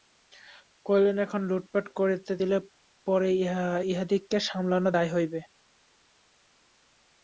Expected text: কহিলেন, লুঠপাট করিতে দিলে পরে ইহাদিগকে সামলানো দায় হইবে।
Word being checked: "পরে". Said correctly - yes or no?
yes